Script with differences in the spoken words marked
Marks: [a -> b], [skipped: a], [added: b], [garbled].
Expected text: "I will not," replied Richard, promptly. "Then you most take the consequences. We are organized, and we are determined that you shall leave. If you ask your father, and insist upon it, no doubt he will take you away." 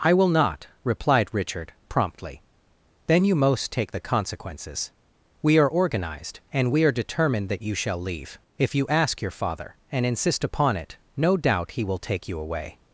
"I will not," replied Richard, promptly. "Then you most take the consequences. We are organized, and we are determined that you shall leave. If you ask your father, and insist upon it, no doubt he will take you away."